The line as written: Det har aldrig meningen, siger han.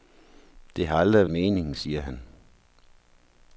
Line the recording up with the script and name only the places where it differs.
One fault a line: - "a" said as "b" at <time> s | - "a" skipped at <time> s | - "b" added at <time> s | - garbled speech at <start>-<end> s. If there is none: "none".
none